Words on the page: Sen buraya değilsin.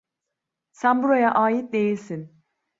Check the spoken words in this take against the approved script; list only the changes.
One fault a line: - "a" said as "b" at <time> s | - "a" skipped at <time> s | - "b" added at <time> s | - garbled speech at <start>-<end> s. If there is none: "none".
- "ait" added at 1.3 s